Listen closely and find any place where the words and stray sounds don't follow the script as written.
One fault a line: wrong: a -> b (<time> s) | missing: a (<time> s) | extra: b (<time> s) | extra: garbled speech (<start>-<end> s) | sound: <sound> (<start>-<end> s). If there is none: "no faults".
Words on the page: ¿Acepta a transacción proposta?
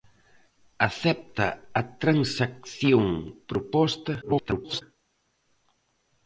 extra: garbled speech (4.2-4.8 s)